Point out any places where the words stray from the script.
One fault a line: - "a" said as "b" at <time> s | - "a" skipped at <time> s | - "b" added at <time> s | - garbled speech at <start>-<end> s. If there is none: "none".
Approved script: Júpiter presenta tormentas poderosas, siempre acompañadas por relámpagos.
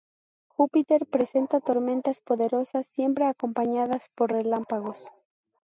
none